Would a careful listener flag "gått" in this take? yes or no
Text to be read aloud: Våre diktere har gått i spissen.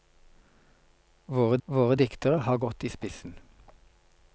no